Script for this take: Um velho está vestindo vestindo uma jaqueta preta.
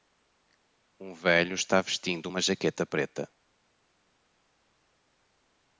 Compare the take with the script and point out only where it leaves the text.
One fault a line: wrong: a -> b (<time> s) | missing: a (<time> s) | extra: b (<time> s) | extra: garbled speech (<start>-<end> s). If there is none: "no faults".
missing: vestindo (2.2 s)